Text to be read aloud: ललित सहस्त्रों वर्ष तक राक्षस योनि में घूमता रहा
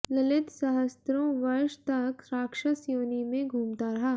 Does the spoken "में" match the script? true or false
true